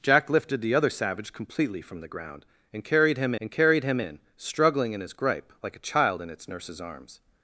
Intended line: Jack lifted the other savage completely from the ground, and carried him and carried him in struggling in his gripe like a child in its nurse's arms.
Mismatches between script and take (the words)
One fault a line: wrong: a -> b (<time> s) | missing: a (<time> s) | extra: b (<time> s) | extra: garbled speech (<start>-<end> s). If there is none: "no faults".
no faults